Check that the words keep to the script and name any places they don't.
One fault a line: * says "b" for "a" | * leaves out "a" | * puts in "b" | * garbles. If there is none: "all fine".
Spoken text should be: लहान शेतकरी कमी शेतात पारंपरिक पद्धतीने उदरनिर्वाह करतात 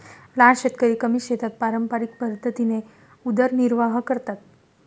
all fine